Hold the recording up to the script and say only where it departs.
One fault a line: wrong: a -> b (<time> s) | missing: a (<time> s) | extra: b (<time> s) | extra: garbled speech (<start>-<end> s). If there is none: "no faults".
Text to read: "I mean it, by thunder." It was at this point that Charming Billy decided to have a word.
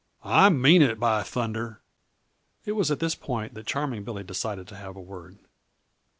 no faults